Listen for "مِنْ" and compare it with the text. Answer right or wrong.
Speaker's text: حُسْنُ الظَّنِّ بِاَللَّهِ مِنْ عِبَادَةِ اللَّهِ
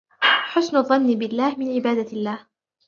right